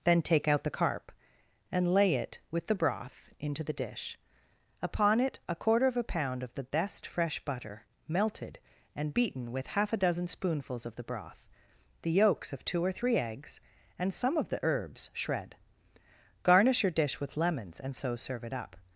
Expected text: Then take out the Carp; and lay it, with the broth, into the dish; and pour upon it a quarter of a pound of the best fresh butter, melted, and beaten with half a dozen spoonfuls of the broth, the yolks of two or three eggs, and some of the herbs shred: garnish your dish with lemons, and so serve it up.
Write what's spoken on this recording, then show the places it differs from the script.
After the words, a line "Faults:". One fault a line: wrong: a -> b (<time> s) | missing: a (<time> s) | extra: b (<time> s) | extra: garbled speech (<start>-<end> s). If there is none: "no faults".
Then take out the Carp; and lay it, with the broth, into the dish; upon it a quarter of a pound of the best fresh butter, melted, and beaten with half a dozen spoonfuls of the broth, the yolks of two or three eggs, and some of the herbs shred: garnish your dish with lemons, and so serve it up.
Faults:
missing: and pour (4.2 s)